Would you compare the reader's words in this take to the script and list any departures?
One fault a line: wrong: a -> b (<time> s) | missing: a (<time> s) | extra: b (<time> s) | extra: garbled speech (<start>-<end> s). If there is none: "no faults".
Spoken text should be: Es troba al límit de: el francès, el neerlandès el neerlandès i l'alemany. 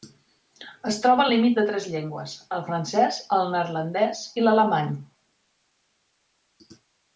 wrong: el francès -> tres llengües (1.7 s)
wrong: neerlandès -> francès (2.7 s)